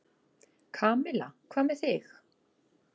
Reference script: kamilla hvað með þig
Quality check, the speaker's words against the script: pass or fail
pass